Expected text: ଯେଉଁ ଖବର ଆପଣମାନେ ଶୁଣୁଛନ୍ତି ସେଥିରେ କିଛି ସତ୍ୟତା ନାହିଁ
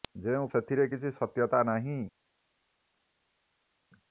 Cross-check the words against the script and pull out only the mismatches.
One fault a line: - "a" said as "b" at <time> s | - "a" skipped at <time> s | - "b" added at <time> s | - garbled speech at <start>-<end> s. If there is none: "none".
- "ଖବର ଆପଣମାନେ ଶୁଣୁଛନ୍ତି" skipped at 0.5 s